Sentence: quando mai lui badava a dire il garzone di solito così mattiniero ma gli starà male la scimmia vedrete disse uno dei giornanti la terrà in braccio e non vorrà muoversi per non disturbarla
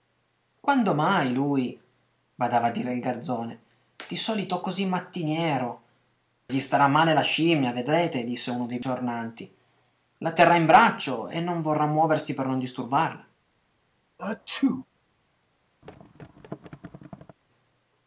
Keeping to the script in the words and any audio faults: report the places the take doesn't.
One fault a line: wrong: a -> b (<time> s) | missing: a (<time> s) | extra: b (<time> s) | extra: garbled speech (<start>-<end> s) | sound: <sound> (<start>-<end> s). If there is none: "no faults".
missing: ma (5.8 s)
sound: sneeze (14.2-14.9 s)
sound: thud (15.8-17.4 s)